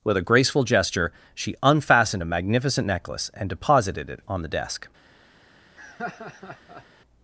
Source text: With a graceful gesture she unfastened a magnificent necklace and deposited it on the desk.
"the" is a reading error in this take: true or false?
false